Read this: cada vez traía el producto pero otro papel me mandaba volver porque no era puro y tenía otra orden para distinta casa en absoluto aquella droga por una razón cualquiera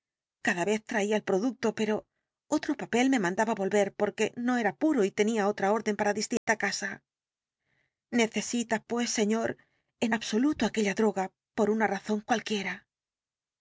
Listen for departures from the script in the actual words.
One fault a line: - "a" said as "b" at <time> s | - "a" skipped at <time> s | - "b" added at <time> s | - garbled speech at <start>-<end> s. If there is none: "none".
- "necesita pues señor" added at 8.1 s